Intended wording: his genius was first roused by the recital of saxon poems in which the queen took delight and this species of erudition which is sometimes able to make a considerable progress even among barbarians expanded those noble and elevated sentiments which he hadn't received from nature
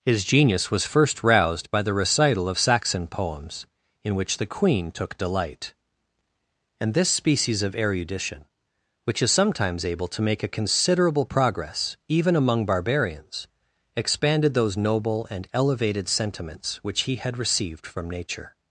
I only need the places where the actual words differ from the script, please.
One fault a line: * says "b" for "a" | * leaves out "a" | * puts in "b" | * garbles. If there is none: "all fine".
* says "had" for "hadn't"